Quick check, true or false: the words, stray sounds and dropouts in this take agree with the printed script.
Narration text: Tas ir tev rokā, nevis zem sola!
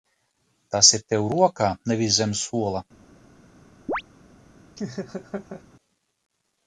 false